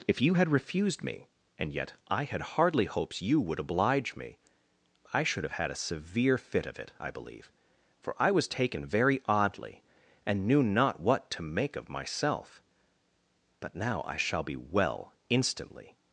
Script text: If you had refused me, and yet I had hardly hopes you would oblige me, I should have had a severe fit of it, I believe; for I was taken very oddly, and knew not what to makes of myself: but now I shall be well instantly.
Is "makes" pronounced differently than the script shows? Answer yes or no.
yes